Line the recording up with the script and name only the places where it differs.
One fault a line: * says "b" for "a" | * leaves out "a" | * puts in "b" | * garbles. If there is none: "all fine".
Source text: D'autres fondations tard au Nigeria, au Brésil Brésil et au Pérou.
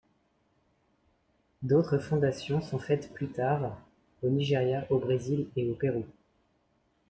* puts in "sont faites plus"
* leaves out "Brésil"